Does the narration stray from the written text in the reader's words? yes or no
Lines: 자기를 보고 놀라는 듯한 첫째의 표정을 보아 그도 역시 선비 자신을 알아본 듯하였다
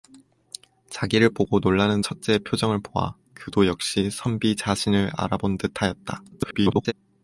yes